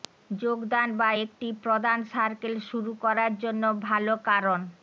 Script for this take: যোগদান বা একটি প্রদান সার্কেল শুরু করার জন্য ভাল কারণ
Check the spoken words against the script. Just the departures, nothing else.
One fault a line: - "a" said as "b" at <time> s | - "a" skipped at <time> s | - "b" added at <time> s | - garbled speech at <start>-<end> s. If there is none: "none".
none